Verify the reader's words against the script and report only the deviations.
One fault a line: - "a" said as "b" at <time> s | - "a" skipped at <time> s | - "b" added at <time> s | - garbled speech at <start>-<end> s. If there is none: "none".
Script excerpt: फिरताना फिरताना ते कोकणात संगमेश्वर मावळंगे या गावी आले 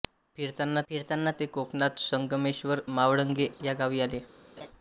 none